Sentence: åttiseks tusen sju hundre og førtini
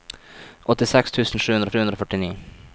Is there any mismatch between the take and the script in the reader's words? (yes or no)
yes